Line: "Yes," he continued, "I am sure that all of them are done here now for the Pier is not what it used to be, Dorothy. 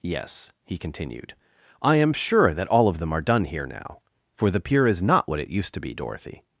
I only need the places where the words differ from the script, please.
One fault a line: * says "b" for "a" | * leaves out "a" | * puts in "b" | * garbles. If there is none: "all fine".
all fine